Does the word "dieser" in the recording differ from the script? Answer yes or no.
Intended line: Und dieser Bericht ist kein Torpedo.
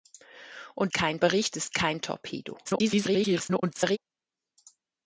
yes